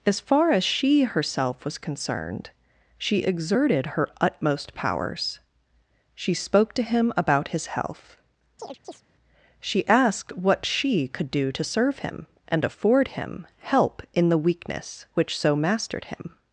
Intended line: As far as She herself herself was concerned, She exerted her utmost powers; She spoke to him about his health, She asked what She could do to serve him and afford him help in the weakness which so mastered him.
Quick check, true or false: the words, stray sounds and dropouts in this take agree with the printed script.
false